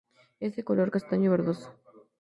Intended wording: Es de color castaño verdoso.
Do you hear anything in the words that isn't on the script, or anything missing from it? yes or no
no